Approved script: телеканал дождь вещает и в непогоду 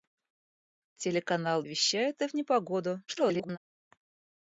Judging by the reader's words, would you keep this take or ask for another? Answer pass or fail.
fail